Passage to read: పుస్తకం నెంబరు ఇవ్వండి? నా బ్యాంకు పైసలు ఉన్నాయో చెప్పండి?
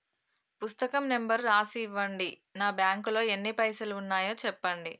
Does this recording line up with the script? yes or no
no